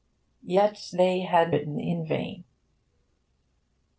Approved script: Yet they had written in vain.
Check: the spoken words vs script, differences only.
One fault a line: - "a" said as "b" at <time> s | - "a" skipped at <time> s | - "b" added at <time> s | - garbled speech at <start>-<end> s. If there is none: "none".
none